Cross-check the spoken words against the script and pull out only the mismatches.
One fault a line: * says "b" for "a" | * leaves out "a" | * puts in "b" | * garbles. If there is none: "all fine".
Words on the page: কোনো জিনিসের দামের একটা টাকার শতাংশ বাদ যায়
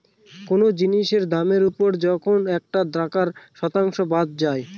* puts in "ওপর যখন"